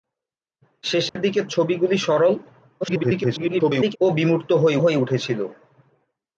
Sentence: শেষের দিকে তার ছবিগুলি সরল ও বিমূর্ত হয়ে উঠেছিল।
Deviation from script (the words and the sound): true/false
true